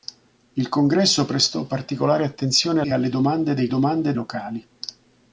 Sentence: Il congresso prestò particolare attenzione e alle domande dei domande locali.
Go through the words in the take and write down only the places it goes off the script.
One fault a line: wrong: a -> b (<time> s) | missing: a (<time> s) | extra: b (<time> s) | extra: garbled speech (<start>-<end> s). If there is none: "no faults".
no faults